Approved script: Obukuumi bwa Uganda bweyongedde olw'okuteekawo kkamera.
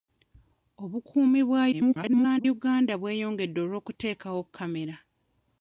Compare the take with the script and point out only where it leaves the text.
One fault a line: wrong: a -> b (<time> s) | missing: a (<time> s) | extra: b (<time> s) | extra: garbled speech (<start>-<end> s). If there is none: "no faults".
extra: garbled speech (1.7-2.5 s)